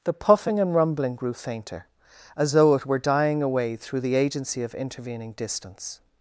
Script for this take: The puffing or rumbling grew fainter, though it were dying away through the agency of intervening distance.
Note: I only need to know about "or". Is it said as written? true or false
false